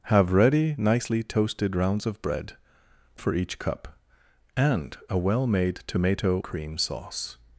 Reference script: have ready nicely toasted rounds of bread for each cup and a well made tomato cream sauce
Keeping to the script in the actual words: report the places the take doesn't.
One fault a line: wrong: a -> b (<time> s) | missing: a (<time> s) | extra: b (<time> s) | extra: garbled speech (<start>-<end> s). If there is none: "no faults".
no faults